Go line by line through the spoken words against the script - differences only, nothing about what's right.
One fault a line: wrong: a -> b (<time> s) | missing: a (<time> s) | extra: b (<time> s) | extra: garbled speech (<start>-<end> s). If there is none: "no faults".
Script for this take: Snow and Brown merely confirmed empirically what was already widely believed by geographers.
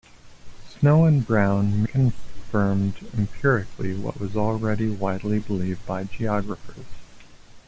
missing: merely (1.8 s)